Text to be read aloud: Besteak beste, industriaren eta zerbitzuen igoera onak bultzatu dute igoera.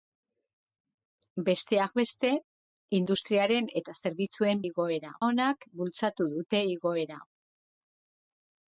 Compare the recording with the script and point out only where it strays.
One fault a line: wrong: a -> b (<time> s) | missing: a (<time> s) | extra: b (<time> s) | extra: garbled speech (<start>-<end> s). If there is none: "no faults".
no faults